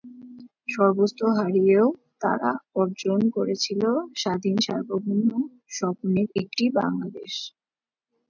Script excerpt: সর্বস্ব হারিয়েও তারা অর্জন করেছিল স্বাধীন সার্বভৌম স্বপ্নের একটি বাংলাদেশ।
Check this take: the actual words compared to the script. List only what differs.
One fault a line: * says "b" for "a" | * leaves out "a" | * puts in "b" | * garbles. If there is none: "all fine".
all fine